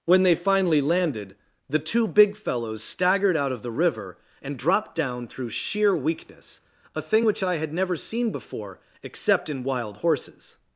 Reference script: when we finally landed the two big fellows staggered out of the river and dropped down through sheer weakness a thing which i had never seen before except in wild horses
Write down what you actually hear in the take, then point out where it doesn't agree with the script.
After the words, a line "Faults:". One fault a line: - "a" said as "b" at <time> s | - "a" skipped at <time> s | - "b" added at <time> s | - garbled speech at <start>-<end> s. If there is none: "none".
when they finally landed the two big fellows staggered out of the river and dropped down through sheer weakness a thing which i had never seen before except in wild horses
Faults:
- "we" said as "they" at 0.2 s